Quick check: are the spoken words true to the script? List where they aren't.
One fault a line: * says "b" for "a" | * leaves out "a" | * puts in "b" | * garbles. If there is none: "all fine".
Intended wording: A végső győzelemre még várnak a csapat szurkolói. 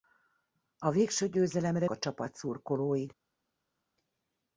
* leaves out "még várnak"